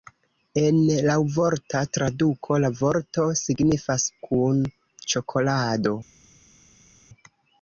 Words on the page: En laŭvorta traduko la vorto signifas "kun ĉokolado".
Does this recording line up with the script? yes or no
yes